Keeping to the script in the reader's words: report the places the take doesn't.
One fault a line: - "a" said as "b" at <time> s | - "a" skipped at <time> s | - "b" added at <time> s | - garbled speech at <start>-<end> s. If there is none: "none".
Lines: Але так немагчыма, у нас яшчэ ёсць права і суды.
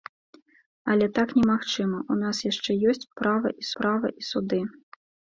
- "права і" added at 3.8 s